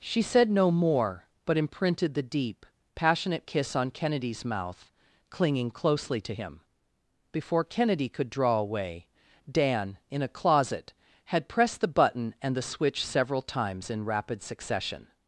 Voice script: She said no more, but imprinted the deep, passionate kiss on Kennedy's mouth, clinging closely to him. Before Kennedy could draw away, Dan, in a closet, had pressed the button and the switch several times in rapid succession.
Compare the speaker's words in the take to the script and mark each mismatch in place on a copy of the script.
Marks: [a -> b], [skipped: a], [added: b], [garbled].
She said no more, but imprinted the deep, passionate kiss on Kennedy's mouth, clinging closely to him. Before Kennedy could draw away, Dan, in a closet, had pressed the button and the switch several times in rapid succession.